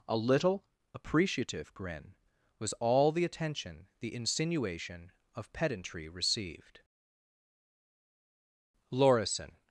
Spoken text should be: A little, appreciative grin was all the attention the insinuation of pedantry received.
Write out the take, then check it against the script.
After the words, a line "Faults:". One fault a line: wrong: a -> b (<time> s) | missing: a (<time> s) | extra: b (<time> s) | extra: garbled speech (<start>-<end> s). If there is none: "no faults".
A little, appreciative grin was all the attention the insinuation of pedantry received. Lorison
Faults:
extra: Lorison (8.9 s)